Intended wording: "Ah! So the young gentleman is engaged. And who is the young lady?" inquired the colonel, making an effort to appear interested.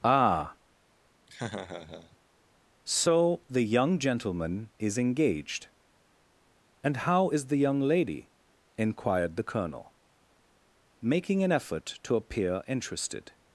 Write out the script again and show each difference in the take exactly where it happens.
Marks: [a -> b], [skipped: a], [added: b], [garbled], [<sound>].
"Ah! [laugh] So the young gentleman is engaged. And [who -> how] is the young lady?" inquired the colonel, making an effort to appear interested.